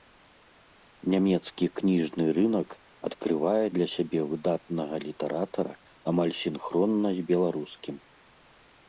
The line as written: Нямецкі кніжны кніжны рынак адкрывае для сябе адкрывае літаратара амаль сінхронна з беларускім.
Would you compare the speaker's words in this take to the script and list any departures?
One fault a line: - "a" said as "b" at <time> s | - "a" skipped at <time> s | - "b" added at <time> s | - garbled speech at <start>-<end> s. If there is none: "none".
- "кніжны" skipped at 2.2 s
- "адкрывае" said as "выдатнага" at 4.3 s